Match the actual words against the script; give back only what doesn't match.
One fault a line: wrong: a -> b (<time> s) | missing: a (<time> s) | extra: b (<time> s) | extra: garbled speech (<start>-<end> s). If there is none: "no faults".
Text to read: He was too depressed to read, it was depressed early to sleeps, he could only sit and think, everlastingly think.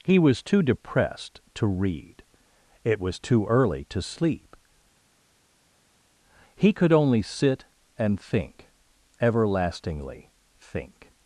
wrong: depressed -> too (3.2 s)
wrong: sleeps -> sleep (4.0 s)